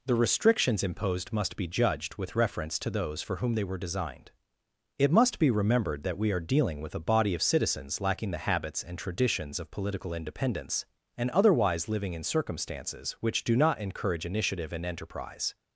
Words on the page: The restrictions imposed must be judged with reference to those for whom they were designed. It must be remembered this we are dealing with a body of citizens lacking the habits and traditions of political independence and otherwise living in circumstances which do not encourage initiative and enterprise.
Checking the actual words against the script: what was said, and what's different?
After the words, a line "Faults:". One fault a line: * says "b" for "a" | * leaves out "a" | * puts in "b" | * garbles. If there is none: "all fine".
The restrictions imposed must be judged with reference to those for whom they were designed. It must be remembered that we are dealing with a body of citizens lacking the habits and traditions of political independence and otherwise living in circumstances which do not encourage initiative and enterprise.
Faults:
* says "that" for "this"